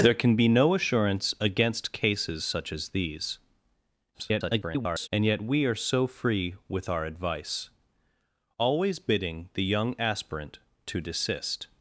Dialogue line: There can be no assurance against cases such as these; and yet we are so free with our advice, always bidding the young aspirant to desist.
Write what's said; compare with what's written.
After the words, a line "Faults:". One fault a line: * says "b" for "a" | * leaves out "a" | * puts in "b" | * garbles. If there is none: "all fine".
There can be no assurance against cases such as these; [garbled] and yet we are so free with our advice, always bidding the young aspirant to desist.
Faults:
* garbles